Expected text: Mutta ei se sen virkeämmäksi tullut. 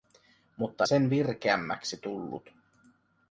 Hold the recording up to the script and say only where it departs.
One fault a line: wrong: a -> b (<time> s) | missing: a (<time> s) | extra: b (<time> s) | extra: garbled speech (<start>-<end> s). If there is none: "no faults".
missing: ei se (0.9 s)